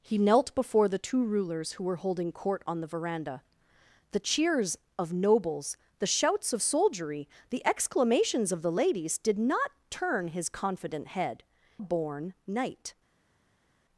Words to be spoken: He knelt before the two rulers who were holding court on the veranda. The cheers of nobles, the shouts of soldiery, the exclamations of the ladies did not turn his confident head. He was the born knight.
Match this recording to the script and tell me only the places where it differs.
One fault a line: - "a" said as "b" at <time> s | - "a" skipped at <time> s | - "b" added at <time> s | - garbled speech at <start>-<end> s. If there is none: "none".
- "He was the" skipped at 11.4 s